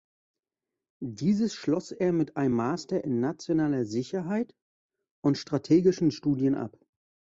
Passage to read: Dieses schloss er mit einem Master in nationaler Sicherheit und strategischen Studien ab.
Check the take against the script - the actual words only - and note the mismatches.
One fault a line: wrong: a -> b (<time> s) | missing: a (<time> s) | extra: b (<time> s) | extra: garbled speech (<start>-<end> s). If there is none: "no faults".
no faults